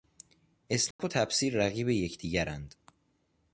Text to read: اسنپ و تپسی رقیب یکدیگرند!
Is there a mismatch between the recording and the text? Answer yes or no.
no